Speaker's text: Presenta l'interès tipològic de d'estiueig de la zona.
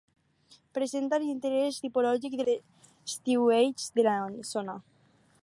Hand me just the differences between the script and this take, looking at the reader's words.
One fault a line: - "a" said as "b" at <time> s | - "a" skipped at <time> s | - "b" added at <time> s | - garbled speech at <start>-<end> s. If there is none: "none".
none